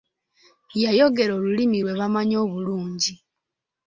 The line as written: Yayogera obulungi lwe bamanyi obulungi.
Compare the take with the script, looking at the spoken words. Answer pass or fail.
fail